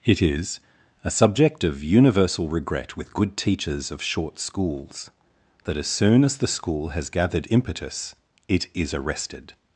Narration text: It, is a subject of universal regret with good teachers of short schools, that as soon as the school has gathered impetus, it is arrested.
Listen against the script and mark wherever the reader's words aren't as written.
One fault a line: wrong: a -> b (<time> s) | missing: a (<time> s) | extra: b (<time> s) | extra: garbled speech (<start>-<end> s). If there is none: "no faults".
no faults